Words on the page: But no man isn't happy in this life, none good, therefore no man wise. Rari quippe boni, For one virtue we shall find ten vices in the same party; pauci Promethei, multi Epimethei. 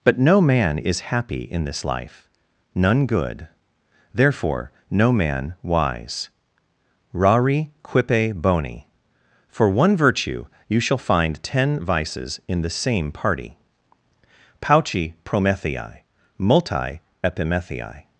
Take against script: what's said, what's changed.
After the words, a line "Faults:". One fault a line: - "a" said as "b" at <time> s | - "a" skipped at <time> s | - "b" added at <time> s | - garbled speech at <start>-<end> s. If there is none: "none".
But no man is happy in this life, none good, therefore no man wise. Rari quippe boni, For one virtue you shall find ten vices in the same party; pauci Promethei, multi Epimethei.
Faults:
- "isn't" said as "is" at 0.8 s
- "we" said as "you" at 10.7 s